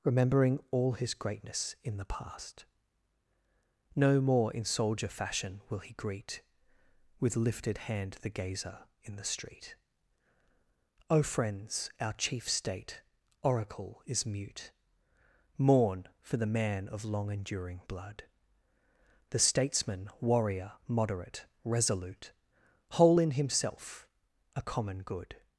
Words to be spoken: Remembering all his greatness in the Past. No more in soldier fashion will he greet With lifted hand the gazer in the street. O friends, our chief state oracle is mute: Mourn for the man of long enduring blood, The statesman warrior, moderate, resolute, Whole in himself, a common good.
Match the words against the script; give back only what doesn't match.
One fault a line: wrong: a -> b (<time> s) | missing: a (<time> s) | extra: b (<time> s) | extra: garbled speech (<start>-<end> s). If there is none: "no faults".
no faults